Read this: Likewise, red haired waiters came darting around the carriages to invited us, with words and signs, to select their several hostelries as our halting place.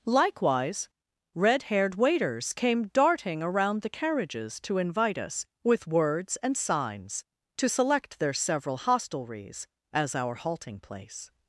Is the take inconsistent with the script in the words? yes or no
yes